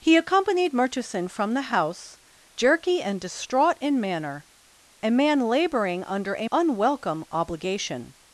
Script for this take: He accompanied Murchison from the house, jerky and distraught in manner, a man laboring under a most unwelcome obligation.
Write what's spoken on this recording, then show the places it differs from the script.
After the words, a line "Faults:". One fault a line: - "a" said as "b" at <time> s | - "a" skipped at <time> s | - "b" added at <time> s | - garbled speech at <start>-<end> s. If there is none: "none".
He accompanied Murchison from the house, jerky and distraught in manner, a man laboring under a unwelcome obligation.
Faults:
- "most" skipped at 6.5 s